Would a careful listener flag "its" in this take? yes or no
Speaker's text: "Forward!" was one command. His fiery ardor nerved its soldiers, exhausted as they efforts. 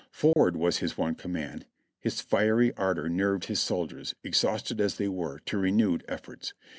yes